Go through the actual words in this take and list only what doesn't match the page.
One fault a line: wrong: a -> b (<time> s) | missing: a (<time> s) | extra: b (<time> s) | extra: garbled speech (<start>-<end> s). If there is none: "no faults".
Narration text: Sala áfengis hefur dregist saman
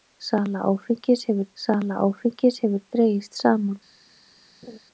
extra: sala áfengis hefur (1.6 s)